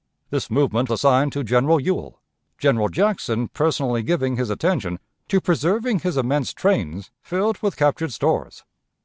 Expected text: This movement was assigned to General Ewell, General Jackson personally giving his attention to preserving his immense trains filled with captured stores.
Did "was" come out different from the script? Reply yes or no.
yes